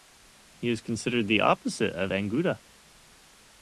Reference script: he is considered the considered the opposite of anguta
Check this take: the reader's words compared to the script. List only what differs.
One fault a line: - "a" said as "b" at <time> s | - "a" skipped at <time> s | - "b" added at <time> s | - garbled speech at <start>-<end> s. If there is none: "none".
- "considered the" skipped at 1.4 s